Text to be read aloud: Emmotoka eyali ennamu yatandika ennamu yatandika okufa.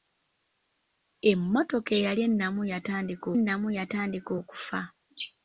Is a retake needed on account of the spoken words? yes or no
no